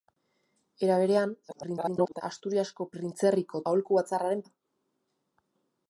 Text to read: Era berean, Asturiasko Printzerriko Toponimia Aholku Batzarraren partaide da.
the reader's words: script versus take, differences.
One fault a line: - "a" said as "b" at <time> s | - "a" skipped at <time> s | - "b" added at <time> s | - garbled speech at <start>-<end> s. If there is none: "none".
- garbled speech at 1.5-2.2 s
- "Toponimia" skipped at 3.6 s
- "partaide" skipped at 4.5 s